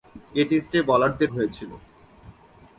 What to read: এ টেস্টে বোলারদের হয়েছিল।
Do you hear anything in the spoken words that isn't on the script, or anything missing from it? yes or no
no